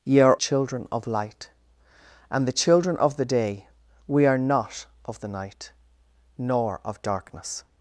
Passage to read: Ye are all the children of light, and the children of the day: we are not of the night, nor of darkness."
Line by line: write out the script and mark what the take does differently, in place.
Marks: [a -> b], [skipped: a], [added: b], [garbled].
Ye are [skipped: all the] children of light, and the children of the day: we are not of the night, nor of darkness."